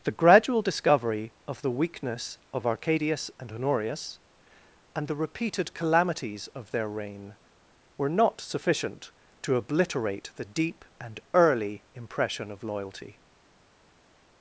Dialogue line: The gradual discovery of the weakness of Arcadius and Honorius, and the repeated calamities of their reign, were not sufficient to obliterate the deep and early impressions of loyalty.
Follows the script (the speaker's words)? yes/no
no